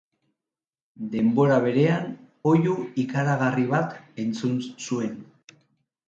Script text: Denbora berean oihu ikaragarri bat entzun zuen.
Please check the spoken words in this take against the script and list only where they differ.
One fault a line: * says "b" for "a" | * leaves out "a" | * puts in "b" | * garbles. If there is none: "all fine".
all fine